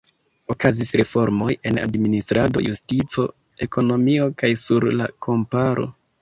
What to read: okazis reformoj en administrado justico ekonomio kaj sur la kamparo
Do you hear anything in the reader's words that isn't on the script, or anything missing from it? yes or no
no